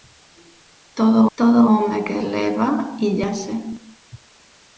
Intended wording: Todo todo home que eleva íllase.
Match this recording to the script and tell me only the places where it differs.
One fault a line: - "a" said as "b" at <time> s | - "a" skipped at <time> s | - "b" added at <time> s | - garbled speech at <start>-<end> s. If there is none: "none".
none